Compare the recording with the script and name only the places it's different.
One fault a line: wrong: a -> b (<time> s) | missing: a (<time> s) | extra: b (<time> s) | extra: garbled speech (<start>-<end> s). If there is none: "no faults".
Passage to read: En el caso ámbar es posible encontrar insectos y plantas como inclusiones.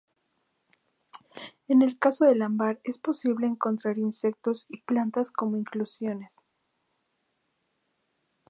extra: del (2.2 s)